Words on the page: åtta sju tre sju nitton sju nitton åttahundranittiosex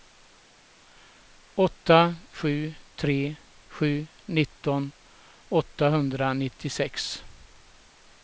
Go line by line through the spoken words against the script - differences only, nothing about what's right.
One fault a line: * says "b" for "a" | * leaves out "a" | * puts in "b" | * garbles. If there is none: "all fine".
* leaves out "sju nitton"